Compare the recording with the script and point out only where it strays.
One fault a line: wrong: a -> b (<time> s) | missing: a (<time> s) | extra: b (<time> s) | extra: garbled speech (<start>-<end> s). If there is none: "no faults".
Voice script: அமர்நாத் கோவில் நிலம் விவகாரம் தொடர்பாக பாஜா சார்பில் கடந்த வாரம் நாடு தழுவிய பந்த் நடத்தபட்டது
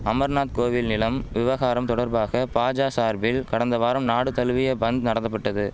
no faults